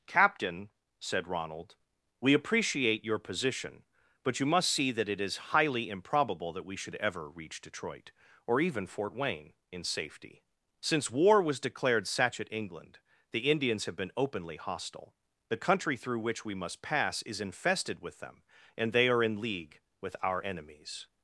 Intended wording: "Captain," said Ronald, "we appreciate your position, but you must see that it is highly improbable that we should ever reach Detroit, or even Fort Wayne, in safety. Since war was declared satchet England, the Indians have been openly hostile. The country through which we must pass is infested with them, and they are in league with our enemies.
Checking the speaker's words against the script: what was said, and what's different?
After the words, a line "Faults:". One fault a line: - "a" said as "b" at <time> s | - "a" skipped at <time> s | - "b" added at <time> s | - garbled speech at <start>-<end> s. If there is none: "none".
"Captain," said Ronald, "we appreciate your position, but you must see that it is highly improbable that we should ever reach Detroit, or even Fort Wayne, in safety. Since war was declared satchet England, the Indians have been openly hostile. The country through which we must pass is infested with them, and they are in league with our enemies.
Faults:
none